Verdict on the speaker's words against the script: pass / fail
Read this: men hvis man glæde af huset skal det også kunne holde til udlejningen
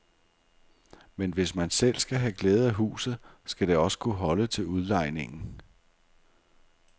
fail